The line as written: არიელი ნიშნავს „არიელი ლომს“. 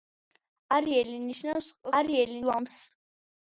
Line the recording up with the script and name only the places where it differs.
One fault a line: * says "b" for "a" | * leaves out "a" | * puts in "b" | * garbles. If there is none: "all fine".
all fine